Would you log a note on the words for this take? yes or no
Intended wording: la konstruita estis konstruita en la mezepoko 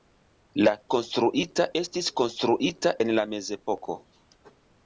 no